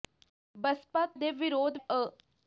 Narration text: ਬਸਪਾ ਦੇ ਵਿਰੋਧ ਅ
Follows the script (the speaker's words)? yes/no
yes